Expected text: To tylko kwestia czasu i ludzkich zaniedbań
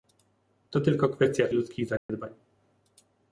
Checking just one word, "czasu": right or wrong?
wrong